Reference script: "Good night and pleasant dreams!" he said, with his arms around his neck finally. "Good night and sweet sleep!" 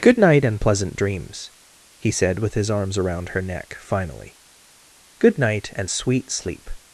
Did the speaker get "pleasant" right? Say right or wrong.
right